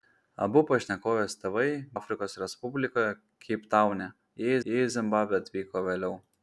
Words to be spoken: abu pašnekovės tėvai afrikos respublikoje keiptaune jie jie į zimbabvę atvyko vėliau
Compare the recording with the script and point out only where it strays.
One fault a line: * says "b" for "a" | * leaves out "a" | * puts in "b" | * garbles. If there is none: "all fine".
all fine